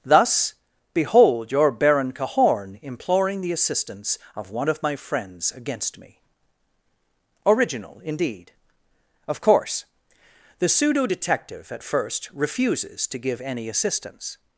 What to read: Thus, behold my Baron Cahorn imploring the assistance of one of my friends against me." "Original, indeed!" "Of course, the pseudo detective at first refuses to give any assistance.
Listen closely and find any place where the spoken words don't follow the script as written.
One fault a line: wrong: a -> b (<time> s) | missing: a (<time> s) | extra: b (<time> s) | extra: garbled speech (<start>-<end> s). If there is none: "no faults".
wrong: my -> your (1.5 s)